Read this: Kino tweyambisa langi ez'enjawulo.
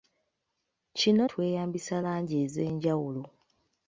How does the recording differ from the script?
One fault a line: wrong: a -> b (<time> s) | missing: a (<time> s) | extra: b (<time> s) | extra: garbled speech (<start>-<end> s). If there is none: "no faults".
no faults